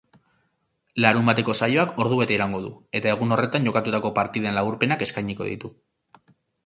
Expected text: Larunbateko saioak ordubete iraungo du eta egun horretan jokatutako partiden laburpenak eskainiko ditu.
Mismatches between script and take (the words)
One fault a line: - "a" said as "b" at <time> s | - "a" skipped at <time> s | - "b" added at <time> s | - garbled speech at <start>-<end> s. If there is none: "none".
none